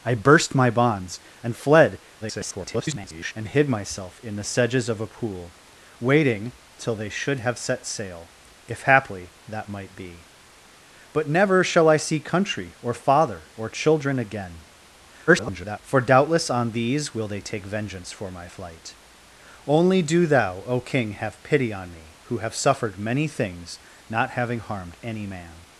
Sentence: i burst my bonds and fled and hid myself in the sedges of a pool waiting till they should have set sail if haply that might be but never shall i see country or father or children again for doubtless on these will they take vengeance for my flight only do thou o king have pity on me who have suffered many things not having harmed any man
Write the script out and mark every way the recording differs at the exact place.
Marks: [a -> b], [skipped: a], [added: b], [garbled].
i burst my bonds and fled [garbled] and hid myself in the sedges of a pool waiting till they should have set sail if haply that might be but never shall i see country or father or children again [garbled] for doubtless on these will they take vengeance for my flight only do thou o king have pity on me who have suffered many things not having harmed any man